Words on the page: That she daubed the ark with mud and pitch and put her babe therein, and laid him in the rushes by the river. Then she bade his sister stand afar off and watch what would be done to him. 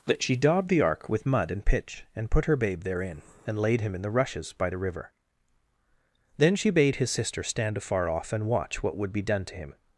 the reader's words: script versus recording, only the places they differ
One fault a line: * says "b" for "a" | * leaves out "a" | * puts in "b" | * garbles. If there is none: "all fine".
all fine